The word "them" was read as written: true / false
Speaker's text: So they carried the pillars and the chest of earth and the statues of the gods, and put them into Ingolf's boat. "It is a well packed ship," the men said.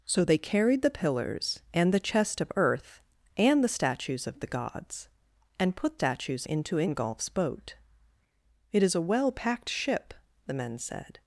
false